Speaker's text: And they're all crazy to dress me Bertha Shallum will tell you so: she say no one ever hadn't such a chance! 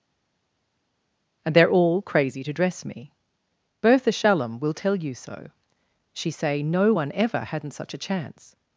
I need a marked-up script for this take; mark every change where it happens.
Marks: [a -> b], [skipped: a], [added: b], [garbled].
And they're all crazy to dress me Bertha Shallum will tell you so: she say no one ever hadn't such a chance!